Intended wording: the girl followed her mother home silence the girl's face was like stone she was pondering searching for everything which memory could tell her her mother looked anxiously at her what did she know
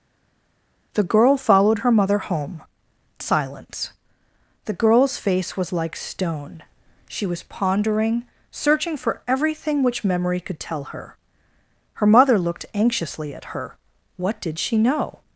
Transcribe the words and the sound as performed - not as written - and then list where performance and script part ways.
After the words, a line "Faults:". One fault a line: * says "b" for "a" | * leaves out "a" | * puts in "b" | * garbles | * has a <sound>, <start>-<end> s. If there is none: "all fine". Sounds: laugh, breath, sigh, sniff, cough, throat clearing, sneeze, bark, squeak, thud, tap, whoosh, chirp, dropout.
the girl followed her mother home silence the girl's face was like stone she was pondering searching for everything which memory could tell her her mother looked anxiously at her what did she know
Faults:
all fine